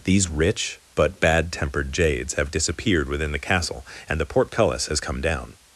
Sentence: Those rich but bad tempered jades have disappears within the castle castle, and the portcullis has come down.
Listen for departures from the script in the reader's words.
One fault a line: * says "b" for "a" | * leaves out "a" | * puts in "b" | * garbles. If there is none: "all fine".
* says "These" for "Those"
* says "disappeared" for "disappears"
* leaves out "castle"